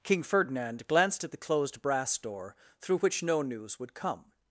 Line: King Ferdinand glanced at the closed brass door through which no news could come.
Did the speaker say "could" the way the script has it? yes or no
no